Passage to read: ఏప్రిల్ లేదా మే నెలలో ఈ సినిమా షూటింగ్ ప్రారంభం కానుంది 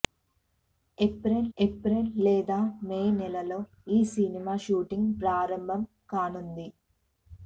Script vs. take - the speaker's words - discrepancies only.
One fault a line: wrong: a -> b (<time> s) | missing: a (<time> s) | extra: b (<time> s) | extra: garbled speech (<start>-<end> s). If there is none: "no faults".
extra: ఏప్రిల్ (1.6 s)